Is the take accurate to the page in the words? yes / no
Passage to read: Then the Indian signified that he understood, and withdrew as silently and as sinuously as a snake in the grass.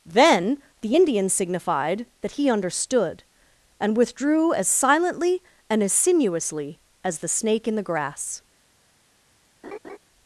no